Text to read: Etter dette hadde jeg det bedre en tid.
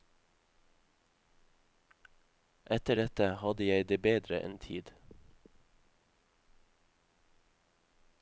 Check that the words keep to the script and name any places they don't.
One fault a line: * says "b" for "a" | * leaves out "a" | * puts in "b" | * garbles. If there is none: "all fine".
all fine